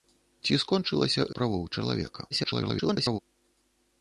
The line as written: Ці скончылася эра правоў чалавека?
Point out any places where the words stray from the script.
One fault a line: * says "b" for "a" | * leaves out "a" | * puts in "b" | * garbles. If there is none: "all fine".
* leaves out "эра"
* garbles